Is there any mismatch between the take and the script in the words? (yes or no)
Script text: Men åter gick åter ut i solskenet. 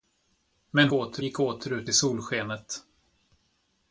no